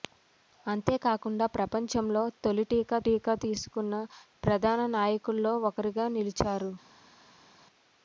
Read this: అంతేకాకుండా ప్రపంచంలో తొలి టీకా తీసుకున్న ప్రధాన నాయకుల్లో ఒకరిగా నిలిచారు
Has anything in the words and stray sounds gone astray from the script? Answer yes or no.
yes